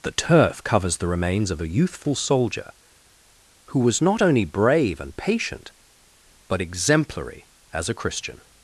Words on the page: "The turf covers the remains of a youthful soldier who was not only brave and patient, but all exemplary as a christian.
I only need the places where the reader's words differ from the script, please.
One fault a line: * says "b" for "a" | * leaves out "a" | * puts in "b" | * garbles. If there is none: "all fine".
* leaves out "all"